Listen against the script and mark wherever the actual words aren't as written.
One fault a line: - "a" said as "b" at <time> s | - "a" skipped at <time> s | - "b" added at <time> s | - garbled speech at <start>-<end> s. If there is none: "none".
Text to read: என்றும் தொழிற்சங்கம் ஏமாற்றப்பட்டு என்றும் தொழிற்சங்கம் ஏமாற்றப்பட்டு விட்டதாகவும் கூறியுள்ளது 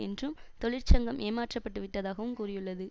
- "என்றும் தொழிற்சங்கம் ஏமாற்றப்பட்டு" skipped at 1.8 s